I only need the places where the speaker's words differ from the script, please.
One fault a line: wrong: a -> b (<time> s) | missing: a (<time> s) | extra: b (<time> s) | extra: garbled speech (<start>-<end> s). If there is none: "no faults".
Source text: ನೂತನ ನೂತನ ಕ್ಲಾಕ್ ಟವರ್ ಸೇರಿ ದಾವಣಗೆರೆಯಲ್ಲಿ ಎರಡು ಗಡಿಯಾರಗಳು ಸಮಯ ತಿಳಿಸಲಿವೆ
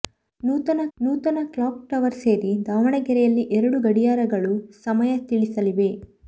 no faults